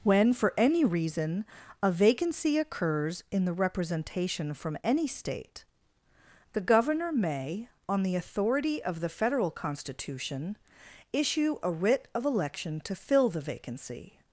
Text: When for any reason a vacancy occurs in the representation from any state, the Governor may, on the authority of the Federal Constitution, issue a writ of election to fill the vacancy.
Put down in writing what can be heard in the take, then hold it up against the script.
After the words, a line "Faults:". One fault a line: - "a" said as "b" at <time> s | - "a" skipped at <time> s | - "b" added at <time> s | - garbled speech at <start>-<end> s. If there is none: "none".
When for any reason a vacancy occurs in the representation from any state, the Governor may, on the authority of the Federal Constitution, issue a writ of election to fill the vacancy.
Faults:
none